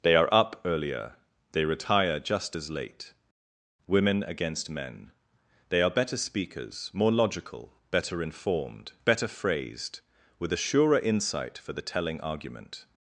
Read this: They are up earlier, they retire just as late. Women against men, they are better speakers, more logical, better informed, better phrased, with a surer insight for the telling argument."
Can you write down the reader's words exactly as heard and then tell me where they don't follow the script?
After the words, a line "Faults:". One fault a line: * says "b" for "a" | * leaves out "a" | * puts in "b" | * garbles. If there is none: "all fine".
They are up earlier, they retire just as late. Women against men, they are better speakers, more logical, better informed, better phrased, with a surer insight for the telling argument."
Faults:
all fine